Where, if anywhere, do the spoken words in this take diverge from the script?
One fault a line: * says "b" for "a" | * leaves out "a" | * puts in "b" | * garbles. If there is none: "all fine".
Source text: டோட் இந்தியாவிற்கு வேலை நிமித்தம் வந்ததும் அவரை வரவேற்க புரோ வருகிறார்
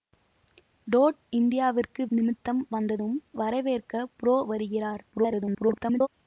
* leaves out "வேலை"
* leaves out "அவரை"
* garbles